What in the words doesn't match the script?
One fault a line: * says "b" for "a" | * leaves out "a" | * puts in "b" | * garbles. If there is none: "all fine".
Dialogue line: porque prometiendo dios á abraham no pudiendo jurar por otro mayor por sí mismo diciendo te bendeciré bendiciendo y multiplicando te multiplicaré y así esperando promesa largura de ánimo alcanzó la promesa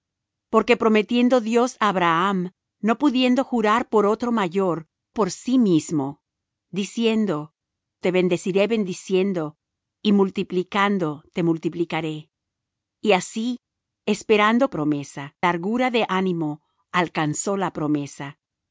all fine